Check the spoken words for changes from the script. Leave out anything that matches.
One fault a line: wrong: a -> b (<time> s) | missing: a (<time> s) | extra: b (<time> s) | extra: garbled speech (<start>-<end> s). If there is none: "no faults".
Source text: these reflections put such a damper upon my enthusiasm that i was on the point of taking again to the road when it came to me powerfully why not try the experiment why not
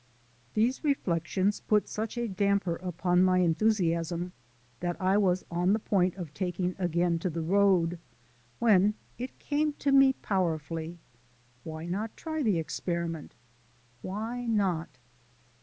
no faults